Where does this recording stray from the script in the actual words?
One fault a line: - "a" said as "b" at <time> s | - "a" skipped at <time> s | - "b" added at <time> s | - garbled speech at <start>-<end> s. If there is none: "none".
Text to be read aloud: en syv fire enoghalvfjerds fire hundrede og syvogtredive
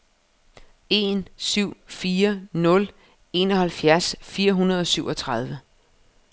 - "nul" added at 2.5 s